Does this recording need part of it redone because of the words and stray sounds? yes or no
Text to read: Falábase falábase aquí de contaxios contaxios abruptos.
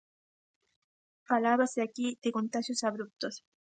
yes